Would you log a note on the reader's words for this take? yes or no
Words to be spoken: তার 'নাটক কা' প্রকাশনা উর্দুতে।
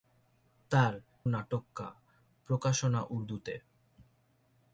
no